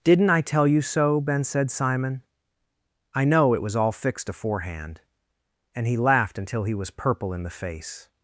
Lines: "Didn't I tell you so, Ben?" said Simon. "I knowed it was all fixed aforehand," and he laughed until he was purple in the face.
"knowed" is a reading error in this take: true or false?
true